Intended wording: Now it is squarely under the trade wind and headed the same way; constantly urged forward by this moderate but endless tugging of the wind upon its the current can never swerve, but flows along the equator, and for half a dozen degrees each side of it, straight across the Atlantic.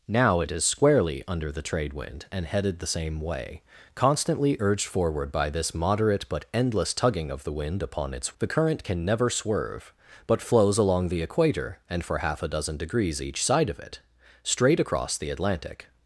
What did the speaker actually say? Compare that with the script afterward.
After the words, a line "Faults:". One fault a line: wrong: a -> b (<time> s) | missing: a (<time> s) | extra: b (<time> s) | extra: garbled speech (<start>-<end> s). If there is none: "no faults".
Now it is squarely under the trade wind and headed the same way; constantly urged forward by this moderate but endless tugging of the wind upon its the current can never swerve, but flows along the equator, and for half a dozen degrees each side of it, straight across the Atlantic.
Faults:
no faults